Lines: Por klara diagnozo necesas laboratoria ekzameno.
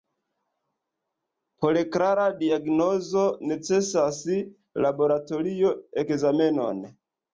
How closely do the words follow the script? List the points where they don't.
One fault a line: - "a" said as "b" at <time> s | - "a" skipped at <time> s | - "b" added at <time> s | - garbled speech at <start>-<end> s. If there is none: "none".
none